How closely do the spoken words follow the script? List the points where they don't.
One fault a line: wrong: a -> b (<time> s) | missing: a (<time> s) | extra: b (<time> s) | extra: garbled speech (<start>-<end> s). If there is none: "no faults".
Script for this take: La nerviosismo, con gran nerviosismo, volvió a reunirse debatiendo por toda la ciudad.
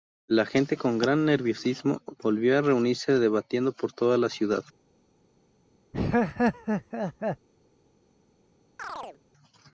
wrong: nerviosismo -> gente (0.5 s)